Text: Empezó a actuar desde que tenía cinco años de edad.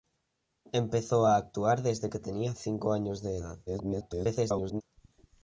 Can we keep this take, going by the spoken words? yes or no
no